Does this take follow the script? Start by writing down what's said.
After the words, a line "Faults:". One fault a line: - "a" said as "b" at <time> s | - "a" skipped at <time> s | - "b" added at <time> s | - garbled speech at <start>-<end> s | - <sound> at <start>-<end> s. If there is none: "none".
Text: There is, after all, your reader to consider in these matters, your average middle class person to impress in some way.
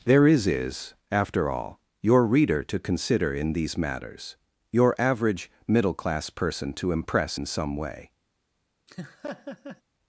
There is is, after all, your reader to consider in these matters, your average middle class person to impress in some way.
Faults:
- "is" added at 0.5 s
- laugh at 8.9-9.8 s